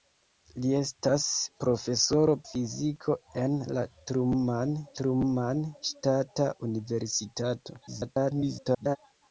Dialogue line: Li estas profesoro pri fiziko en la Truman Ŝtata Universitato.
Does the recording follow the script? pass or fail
fail